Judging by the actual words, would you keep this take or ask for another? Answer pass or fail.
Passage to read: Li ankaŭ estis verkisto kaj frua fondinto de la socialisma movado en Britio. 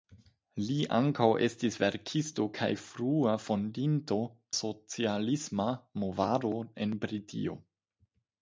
fail